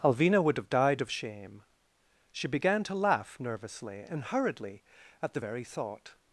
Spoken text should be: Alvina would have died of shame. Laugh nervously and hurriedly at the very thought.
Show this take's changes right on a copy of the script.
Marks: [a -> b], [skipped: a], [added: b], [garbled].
Alvina would have died of shame. [added: She began to] Laugh nervously and hurriedly at the very thought.